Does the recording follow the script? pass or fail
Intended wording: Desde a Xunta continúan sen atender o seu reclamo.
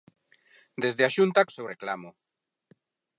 fail